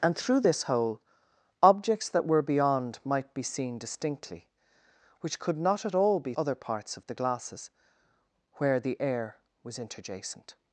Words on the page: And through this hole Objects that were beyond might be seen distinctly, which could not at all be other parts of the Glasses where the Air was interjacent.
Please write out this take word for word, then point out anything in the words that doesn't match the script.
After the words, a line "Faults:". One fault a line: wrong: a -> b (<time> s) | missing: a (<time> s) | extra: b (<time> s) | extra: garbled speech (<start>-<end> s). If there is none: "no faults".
And through this hole Objects that were beyond might be seen distinctly, which could not at all be other parts of the Glasses where the Air was interjacent.
Faults:
no faults